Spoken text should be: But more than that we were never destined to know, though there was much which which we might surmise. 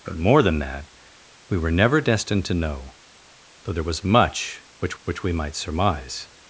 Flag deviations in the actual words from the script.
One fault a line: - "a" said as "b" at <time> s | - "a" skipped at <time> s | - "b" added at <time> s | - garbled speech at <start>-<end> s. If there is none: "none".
none